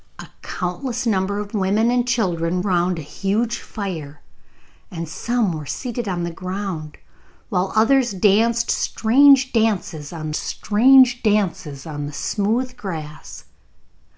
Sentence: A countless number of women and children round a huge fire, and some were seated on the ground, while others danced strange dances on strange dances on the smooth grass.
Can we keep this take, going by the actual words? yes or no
yes